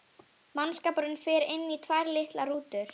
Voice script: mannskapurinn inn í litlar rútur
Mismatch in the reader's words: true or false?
true